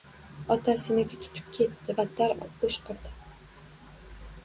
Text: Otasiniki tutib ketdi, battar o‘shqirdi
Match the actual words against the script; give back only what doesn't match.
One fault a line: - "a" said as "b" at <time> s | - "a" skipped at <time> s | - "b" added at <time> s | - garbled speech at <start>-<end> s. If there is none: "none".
none